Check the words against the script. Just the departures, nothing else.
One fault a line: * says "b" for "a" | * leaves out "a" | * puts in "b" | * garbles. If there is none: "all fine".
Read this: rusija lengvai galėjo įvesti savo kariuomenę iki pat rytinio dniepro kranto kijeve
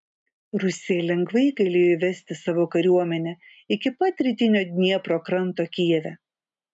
all fine